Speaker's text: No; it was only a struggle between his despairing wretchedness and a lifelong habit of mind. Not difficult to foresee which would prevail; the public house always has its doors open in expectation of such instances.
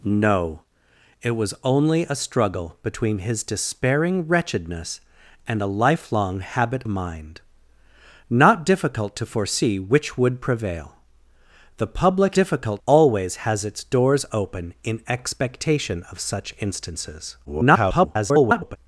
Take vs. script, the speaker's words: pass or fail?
fail